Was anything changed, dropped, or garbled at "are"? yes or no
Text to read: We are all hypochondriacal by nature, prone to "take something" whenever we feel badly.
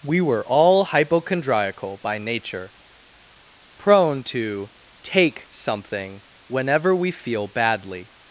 yes